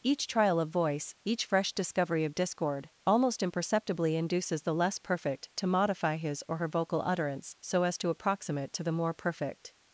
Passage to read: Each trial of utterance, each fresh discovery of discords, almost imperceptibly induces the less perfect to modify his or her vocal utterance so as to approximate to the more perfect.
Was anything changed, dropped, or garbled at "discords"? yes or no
yes